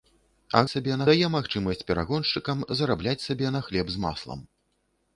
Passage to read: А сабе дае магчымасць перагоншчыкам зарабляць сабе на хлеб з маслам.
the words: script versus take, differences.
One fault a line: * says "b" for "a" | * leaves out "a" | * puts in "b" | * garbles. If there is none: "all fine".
all fine